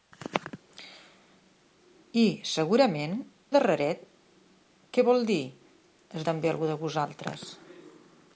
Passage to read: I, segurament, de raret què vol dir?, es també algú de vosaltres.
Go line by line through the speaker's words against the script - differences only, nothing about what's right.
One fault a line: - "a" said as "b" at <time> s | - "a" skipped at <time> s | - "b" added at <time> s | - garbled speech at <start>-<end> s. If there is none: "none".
none